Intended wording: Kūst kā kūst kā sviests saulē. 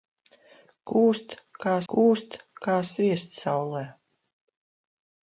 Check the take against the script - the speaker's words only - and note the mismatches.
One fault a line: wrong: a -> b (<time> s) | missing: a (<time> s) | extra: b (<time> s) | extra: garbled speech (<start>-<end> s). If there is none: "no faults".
no faults